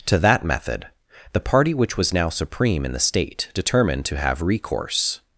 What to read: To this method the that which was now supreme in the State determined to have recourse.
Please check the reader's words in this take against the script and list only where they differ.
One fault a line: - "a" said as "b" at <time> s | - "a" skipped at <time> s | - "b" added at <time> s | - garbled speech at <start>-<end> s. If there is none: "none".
- "this" said as "that" at 0.2 s
- "that" said as "party" at 1.4 s